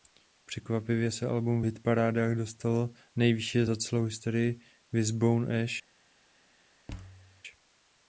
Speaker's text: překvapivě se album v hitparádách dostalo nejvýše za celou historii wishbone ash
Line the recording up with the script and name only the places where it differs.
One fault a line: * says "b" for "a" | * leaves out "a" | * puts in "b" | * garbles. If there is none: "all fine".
all fine